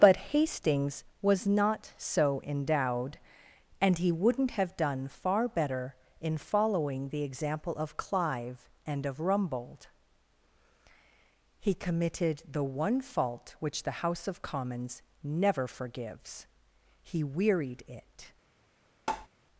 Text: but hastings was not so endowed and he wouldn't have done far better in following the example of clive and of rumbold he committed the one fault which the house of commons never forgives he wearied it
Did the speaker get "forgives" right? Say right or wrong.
right